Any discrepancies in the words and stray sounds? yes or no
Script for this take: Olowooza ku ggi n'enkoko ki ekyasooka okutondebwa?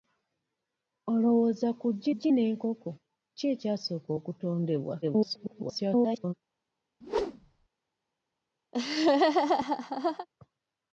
yes